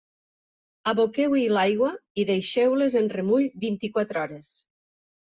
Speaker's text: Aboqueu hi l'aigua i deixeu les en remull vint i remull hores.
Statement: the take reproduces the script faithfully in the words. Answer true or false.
false